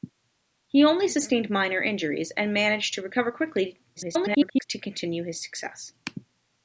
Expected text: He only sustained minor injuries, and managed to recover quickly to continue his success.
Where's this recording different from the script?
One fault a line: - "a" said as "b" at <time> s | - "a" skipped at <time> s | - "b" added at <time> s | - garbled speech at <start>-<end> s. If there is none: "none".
- garbled speech at 4.0-4.6 s